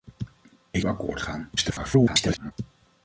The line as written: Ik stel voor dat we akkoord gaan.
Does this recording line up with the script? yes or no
no